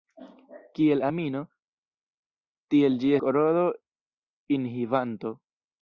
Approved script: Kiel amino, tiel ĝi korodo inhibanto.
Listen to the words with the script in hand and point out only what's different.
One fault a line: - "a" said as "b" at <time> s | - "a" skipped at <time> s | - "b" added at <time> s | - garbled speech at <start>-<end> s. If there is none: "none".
none